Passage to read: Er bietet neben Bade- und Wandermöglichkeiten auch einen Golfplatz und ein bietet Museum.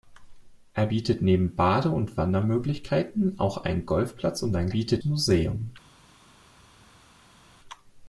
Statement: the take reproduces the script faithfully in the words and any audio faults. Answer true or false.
true